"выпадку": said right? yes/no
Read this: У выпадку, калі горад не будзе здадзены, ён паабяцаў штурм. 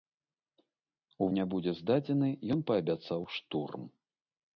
no